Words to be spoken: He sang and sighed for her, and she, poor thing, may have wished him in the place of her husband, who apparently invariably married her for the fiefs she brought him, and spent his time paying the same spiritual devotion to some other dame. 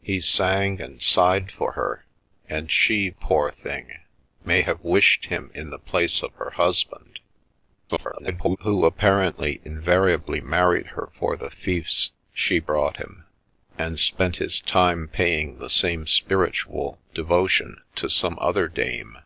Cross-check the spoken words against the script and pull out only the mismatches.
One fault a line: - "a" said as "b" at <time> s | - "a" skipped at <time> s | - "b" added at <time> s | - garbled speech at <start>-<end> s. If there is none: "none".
- garbled speech at 7.9-8.6 s